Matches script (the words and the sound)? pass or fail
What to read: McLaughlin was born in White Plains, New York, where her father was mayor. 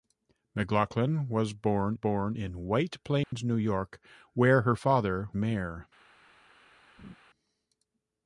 fail